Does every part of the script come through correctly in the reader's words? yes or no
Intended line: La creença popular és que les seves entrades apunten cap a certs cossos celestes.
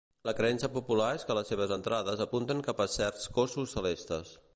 yes